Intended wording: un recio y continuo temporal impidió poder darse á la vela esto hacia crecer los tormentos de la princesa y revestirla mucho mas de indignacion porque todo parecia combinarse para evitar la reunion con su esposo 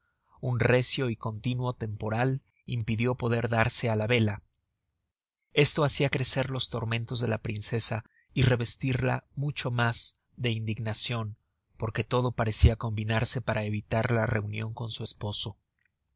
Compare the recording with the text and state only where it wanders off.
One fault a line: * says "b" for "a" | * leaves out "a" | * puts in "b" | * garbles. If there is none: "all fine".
all fine